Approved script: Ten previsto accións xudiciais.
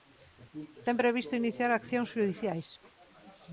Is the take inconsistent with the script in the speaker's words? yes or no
yes